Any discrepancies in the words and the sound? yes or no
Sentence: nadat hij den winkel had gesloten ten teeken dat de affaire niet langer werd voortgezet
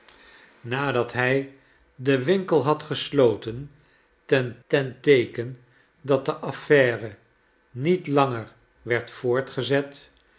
yes